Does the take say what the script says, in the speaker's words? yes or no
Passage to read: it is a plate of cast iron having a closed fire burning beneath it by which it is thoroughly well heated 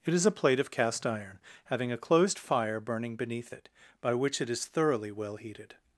yes